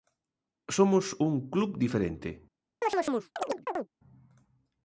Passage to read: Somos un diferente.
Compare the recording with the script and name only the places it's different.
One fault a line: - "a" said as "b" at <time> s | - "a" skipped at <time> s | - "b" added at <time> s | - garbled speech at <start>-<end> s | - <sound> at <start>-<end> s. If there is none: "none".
- "club" added at 1.5 s
- chirp at 2.8-3.9 s